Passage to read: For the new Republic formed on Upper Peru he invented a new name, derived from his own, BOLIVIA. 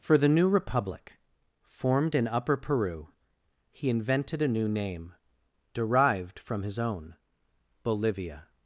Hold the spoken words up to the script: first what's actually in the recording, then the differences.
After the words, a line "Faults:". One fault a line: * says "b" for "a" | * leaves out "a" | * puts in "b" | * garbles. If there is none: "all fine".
For the new Republic formed in Upper Peru he invented a new name, derived from his own, BOLIVIA.
Faults:
* says "in" for "on"